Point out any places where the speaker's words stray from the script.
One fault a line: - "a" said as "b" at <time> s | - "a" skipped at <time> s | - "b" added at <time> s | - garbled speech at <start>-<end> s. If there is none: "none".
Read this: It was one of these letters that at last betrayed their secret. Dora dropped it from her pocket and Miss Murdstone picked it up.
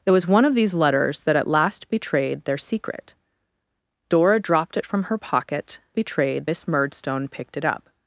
- "and" said as "betrayed" at 5.9 s